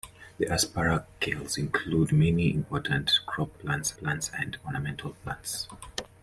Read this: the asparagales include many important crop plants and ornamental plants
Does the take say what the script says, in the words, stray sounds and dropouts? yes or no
no